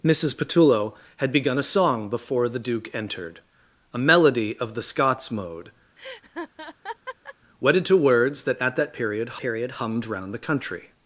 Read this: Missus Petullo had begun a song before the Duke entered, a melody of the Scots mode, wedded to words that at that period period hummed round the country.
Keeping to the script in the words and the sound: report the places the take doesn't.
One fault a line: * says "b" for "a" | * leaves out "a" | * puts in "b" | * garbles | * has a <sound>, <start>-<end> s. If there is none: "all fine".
* has a laugh, 6.0-7.3 s